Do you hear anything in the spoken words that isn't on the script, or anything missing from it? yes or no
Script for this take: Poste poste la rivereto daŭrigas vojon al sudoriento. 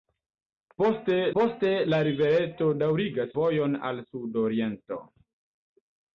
no